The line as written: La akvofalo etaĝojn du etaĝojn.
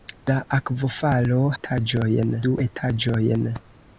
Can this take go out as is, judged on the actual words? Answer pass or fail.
pass